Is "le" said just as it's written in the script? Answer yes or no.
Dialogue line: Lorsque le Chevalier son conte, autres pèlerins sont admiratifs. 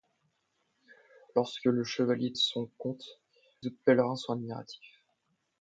yes